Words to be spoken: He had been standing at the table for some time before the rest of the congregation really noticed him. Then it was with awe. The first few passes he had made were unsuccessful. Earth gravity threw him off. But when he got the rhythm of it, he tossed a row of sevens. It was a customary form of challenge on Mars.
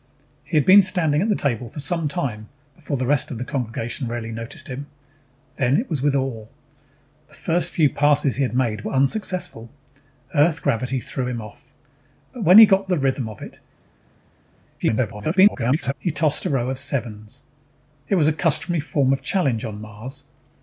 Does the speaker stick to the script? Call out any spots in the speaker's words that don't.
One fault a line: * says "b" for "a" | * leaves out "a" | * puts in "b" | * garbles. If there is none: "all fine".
* garbles